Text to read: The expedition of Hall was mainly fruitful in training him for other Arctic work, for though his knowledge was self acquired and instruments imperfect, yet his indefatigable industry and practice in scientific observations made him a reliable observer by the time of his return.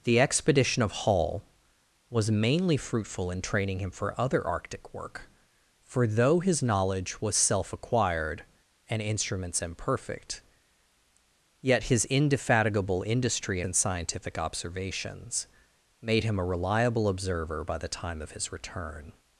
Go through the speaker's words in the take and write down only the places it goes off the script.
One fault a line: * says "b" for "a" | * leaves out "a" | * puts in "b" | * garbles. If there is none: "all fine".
* leaves out "and practice"